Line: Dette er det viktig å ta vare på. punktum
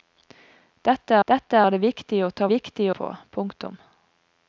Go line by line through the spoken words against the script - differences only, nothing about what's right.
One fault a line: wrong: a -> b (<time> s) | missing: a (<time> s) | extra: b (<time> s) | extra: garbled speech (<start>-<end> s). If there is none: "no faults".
extra: dette (1.3 s)
wrong: vare -> viktig (2.5 s)